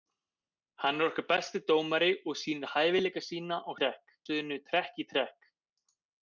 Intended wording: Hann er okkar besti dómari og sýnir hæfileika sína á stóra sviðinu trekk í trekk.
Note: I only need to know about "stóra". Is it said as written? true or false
false